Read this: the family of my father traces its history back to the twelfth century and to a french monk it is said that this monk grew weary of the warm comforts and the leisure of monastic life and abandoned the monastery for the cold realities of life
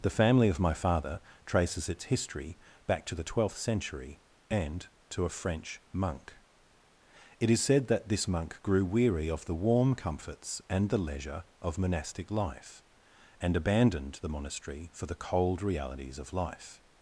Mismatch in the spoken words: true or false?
false